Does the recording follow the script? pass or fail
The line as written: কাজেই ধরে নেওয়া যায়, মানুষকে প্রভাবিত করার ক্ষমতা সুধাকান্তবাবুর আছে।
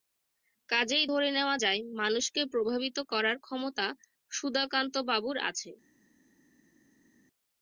pass